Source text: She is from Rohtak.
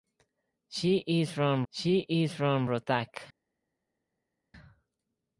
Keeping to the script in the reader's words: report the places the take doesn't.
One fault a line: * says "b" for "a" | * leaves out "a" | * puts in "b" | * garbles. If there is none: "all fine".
* puts in "she is from"